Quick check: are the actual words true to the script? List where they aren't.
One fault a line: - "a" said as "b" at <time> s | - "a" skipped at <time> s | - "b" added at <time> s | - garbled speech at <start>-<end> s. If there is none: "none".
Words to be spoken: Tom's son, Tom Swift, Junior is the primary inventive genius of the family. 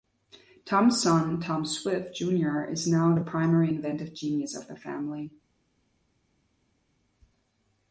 - "now" added at 2.9 s